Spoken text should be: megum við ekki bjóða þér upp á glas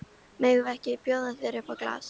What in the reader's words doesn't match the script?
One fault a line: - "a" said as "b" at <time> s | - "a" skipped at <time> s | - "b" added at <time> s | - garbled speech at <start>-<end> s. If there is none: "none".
none